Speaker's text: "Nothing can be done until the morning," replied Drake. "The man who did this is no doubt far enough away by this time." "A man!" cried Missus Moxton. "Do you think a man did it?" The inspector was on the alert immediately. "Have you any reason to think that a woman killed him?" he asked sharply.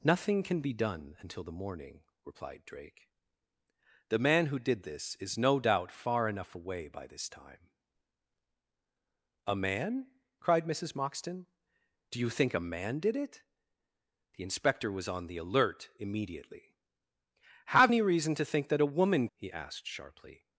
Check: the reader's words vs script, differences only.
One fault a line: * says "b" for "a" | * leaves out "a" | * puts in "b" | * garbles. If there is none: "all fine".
* leaves out "you"
* leaves out "killed him"